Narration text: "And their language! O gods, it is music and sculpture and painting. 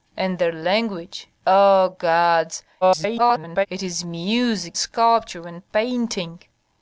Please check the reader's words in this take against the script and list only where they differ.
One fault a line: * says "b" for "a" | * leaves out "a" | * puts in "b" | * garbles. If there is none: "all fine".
* garbles
* leaves out "and"